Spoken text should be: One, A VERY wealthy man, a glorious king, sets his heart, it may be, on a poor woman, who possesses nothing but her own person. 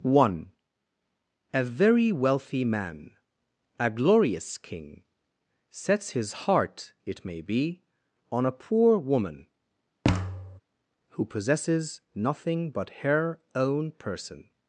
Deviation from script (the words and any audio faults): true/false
true